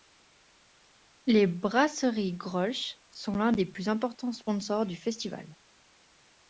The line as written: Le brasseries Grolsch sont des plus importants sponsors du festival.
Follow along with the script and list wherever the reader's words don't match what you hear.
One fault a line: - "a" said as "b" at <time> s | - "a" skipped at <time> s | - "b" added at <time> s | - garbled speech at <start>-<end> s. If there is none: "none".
- "Le" said as "Les" at 1.3 s
- "l'un" added at 3.3 s